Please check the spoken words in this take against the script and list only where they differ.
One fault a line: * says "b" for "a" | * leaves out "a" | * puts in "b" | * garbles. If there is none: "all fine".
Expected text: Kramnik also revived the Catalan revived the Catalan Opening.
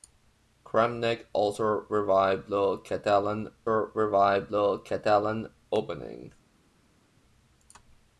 all fine